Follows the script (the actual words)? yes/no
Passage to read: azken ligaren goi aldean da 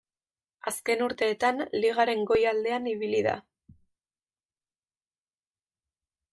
no